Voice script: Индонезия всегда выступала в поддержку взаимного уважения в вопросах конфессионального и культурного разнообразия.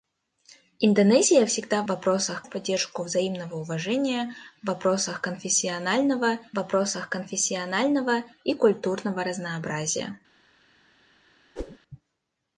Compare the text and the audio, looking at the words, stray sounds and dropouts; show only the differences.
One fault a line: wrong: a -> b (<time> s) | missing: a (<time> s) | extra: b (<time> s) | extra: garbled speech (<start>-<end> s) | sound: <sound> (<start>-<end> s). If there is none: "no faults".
wrong: выступала -> вопросах (1.9 s)
extra: вопросах конфессионального (6.6 s)
sound: whoosh (11.6-11.8 s)